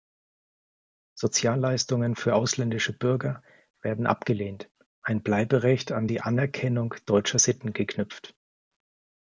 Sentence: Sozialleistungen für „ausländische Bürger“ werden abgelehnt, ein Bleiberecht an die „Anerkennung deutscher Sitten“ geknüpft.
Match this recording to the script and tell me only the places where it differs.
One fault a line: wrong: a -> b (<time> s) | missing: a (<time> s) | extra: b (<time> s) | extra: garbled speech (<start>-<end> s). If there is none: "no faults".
no faults